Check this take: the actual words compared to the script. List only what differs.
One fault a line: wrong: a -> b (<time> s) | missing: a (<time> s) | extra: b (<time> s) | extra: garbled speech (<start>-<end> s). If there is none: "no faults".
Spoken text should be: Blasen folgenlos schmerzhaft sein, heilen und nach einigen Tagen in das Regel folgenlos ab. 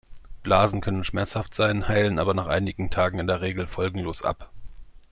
wrong: folgenlos -> können (0.8 s)
wrong: und -> aber (2.2 s)
wrong: das -> der (3.3 s)